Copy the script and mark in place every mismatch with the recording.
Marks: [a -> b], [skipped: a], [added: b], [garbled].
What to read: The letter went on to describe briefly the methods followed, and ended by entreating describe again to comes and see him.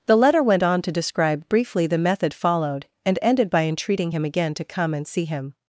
The letter went on to describe briefly the [methods -> method] followed, and ended by entreating [describe -> him] again to [comes -> come] and see him.